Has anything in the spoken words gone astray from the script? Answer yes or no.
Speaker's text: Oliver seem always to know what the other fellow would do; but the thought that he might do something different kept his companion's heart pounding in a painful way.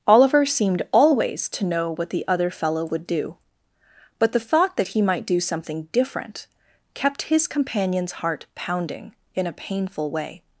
yes